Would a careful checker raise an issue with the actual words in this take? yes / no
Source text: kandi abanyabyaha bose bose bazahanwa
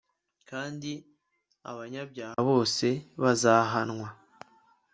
yes